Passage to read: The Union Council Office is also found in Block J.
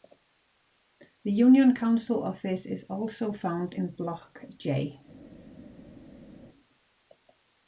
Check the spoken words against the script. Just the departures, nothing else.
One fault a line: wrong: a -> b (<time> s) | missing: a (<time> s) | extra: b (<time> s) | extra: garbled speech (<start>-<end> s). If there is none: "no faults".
no faults